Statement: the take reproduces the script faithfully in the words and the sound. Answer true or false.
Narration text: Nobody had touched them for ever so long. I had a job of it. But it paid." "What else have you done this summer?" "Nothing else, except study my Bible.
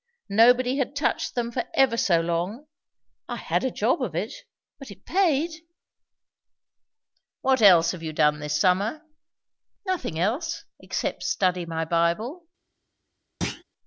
false